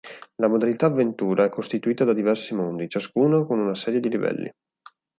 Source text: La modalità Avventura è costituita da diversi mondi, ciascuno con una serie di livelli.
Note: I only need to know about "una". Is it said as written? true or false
true